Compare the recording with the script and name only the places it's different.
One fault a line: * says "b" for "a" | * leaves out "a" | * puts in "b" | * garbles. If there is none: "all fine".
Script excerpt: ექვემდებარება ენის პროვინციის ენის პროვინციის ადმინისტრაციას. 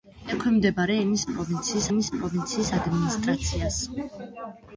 all fine